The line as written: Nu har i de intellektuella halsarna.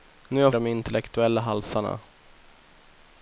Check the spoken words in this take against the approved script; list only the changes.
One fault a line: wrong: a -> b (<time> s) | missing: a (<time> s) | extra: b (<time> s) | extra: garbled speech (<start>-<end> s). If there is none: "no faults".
no faults